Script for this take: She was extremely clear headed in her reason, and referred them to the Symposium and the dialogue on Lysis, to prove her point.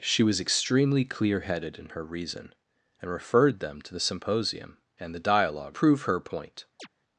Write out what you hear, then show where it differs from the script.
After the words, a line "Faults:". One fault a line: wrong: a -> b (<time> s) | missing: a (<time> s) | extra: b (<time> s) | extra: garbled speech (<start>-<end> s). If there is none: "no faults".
She was extremely clear headed in her reason, and referred them to the Symposium and the dialogue prove her point.
Faults:
missing: on Lysis to (5.8 s)